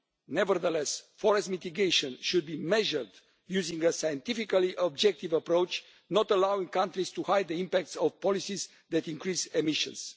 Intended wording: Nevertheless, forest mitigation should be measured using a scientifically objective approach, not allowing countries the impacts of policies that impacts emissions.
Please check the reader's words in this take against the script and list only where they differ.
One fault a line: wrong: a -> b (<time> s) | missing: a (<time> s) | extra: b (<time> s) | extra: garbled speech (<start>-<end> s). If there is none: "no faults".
extra: to hide (7.1 s)
wrong: impacts -> increase (9.1 s)